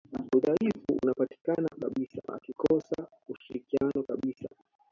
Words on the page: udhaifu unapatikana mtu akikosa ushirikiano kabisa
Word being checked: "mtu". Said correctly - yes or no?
no